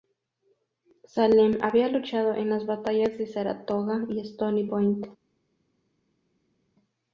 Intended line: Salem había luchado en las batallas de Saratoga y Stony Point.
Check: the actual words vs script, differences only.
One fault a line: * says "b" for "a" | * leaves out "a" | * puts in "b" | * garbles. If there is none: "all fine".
all fine